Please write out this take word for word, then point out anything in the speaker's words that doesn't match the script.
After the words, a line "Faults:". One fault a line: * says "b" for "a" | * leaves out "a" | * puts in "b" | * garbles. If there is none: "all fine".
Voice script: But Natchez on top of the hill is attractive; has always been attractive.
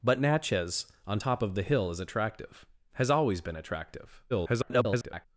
But Natchez on top of the hill is attractive; has always been attractive. [garbled]
Faults:
* garbles